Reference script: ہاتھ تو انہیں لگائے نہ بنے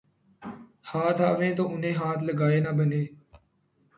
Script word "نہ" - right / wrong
right